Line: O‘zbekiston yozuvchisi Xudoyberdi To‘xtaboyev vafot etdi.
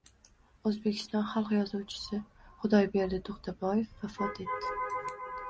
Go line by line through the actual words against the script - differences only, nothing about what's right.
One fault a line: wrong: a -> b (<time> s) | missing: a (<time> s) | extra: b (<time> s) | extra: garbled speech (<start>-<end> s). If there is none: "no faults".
extra: xalq (1.3 s)